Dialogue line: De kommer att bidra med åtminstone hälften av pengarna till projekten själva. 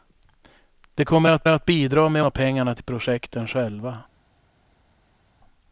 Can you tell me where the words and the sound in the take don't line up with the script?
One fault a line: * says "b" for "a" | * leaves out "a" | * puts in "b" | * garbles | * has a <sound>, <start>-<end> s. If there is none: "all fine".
* puts in "att"
* leaves out "åtminstone hälften"